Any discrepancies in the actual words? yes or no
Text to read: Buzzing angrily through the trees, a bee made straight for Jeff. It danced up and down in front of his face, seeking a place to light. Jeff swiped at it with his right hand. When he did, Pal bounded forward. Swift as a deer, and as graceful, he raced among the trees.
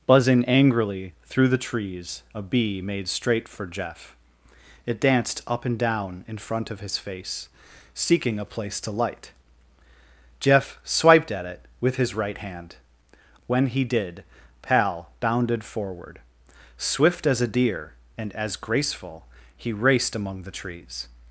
no